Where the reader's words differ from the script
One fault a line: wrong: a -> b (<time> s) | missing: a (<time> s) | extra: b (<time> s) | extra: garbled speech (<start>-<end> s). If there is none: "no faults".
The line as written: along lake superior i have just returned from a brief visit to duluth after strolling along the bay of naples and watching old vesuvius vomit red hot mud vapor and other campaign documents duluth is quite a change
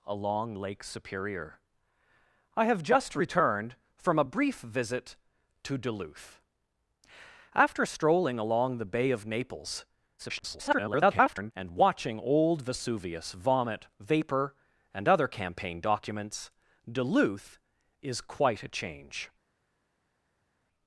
extra: garbled speech (10.2-11.5 s)
missing: red hot mud (13.9 s)